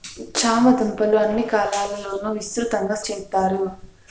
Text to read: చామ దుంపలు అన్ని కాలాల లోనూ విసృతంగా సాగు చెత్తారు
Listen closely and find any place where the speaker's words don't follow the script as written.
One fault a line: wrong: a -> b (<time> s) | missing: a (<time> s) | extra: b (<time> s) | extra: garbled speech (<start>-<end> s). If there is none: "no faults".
missing: సాగు (3.0 s)